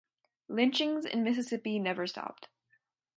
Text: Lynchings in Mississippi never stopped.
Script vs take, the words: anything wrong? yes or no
no